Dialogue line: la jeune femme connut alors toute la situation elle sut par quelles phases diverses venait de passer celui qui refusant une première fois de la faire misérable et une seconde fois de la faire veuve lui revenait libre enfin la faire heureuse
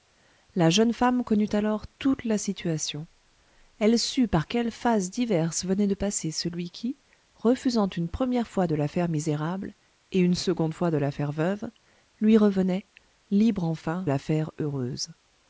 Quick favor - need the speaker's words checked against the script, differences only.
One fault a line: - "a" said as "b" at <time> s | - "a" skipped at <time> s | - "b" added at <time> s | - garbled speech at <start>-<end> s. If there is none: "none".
none